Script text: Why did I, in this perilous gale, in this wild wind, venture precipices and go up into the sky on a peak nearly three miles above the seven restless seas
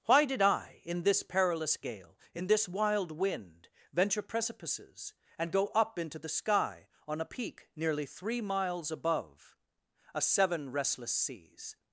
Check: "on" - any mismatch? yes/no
no